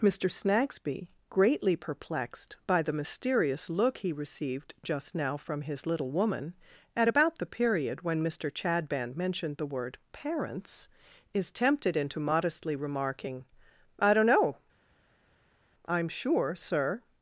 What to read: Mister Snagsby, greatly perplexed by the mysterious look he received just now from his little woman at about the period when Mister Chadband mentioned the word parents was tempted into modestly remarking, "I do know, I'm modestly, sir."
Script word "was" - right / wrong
wrong